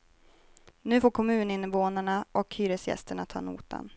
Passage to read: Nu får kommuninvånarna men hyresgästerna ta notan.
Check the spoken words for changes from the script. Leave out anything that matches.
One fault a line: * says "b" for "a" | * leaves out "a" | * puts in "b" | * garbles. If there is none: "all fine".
* says "och" for "men"